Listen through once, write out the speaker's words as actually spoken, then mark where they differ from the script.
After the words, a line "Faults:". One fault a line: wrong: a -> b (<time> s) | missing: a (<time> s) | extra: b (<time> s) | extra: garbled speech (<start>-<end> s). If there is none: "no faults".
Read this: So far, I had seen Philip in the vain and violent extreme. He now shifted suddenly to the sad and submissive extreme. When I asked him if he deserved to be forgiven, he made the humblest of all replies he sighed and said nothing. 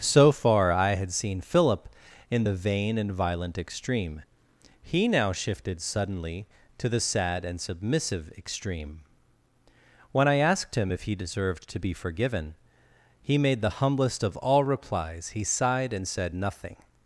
So far, I had seen Philip in the vain and violent extreme. He now shifted suddenly to the sad and submissive extreme. When I asked him if he deserved to be forgiven, he made the humblest of all replies he sighed and said nothing.
Faults:
no faults